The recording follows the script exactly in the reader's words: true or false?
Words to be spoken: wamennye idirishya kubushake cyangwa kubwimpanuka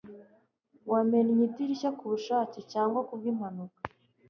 true